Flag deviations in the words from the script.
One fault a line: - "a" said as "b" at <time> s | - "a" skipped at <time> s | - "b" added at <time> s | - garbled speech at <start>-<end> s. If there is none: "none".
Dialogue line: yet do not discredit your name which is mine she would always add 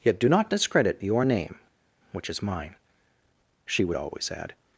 none